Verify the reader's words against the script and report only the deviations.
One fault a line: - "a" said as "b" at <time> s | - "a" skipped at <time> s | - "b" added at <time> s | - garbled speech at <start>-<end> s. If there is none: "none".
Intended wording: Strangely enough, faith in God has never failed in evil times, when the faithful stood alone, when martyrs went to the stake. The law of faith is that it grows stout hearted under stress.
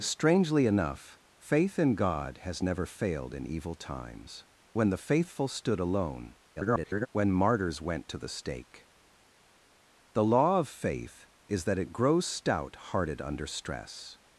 - garbled speech at 6.6-7.1 s